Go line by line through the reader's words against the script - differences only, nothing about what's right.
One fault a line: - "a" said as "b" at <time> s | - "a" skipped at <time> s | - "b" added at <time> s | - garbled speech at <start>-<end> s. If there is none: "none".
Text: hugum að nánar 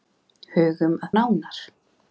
none